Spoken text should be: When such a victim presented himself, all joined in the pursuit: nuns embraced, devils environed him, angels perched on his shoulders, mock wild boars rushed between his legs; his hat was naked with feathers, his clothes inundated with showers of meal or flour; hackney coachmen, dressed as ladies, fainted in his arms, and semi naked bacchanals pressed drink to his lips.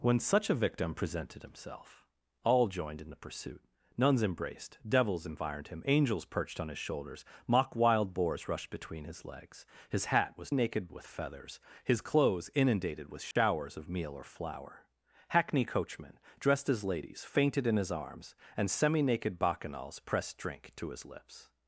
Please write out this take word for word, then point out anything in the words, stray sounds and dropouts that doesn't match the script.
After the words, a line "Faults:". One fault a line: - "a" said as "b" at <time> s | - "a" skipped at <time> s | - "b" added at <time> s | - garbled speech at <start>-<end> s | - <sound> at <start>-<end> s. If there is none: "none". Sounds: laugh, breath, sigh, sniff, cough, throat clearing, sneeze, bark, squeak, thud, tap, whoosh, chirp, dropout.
When such a victim presented himself, all joined in the pursuit: nuns embraced, devils environed him, angels perched on his shoulders, mock wild boars rushed between his legs; his hat was naked with feathers, his clothes inundated with showers of meal or flour; hackney coachmen, dressed as ladies, fainted in his arms, and semi naked bacchanals pressed drink to his lips.
Faults:
- dropout at 13.3-13.4 s